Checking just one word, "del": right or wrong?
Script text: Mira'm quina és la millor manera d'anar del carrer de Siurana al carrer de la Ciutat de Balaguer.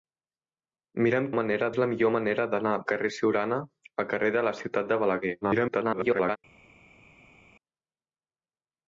wrong